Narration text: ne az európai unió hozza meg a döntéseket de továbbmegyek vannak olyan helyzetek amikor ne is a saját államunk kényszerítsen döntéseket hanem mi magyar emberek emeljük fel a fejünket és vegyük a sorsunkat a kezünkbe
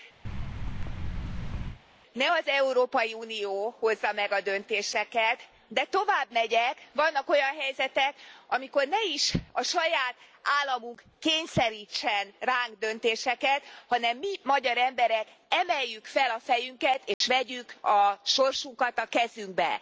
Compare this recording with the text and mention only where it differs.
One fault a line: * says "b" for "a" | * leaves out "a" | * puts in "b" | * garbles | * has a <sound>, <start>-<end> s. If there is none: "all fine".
* has a thud, 0.2-1.8 s
* puts in "ránk"
* has a dropout, 17.1-17.2 s